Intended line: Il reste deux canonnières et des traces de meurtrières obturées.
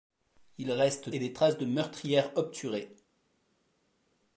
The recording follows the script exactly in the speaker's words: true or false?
false